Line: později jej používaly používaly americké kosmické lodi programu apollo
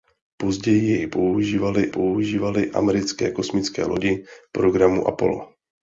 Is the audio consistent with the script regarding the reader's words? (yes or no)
yes